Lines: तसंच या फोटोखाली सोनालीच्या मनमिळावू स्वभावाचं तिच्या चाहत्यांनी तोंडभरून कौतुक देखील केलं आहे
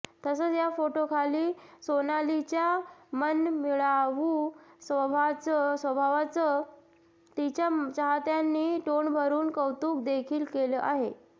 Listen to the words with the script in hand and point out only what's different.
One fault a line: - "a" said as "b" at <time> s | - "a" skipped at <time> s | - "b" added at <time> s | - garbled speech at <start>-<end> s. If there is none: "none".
none